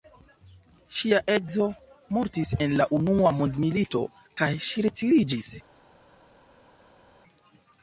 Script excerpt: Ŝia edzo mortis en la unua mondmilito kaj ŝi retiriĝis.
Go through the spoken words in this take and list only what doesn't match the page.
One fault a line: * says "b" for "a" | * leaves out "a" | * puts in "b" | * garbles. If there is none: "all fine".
all fine